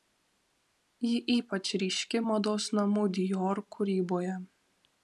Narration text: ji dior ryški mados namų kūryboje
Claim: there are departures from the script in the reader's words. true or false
true